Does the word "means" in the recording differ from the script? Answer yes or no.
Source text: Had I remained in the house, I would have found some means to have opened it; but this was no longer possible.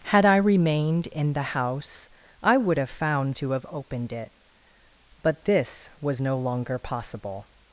yes